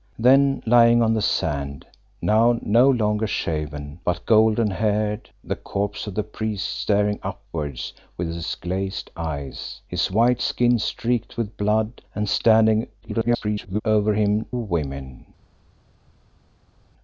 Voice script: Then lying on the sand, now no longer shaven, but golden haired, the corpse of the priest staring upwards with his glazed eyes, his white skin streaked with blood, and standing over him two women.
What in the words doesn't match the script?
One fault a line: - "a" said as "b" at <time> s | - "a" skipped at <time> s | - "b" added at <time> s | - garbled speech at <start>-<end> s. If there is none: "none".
- garbled speech at 13.0-13.8 s
- "two" skipped at 14.5 s